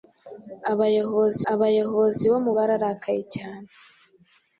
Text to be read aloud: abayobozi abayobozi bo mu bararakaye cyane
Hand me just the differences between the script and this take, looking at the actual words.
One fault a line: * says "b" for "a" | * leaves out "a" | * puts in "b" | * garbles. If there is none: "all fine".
all fine